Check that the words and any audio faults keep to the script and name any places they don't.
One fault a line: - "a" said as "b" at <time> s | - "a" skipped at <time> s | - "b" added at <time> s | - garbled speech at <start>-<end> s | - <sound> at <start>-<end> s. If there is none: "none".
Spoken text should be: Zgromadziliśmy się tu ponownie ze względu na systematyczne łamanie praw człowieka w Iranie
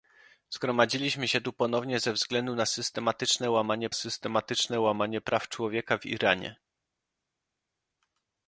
- "systematyczne łamanie" added at 3.9 s